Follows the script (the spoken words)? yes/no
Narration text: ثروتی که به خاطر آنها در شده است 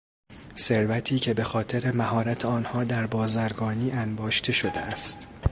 no